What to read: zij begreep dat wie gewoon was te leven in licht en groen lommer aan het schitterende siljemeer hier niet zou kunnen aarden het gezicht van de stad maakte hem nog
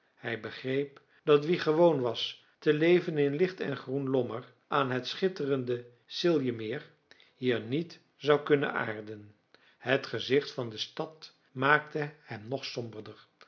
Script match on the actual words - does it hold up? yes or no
no